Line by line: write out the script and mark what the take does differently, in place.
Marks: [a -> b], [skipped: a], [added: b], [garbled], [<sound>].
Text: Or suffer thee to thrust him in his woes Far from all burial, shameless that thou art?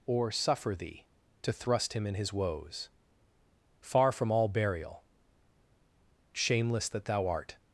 Or suffer thee to thrust him in his woes Far from all burial, shameless that thou art?